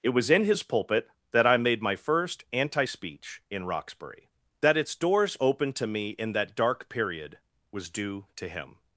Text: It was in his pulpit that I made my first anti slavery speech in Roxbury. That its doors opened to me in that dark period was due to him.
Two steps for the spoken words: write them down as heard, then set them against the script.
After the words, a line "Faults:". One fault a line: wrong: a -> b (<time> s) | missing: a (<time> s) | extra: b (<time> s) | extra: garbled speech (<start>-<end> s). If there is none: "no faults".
It was in his pulpit that I made my first anti speech in Roxbury. That its doors opened to me in that dark period was due to him.
Faults:
missing: slavery (2.9 s)